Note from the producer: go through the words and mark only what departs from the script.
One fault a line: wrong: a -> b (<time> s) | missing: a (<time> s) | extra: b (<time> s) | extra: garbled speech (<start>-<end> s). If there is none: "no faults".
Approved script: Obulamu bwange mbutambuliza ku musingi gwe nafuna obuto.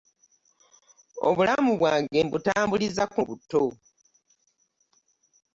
missing: musingi gwe nafuna (3.2 s)